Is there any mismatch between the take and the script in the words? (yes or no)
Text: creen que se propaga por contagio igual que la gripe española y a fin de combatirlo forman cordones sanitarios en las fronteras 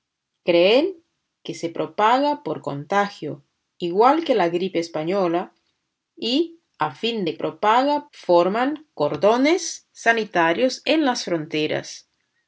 yes